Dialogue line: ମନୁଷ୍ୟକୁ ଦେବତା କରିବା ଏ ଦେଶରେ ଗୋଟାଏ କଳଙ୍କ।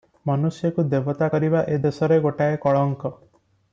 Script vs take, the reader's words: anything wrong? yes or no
no